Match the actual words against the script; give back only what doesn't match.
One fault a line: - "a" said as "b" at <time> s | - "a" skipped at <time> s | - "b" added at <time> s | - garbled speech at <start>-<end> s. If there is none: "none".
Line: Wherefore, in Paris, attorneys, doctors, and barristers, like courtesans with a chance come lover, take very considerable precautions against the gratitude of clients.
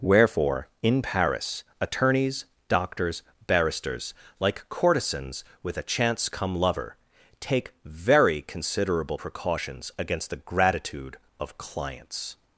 - "and" skipped at 3.2 s